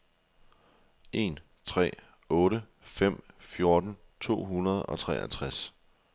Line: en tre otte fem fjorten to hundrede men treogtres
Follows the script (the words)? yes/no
no